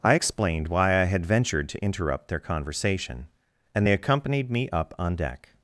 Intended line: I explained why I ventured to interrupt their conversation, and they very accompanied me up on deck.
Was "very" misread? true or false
true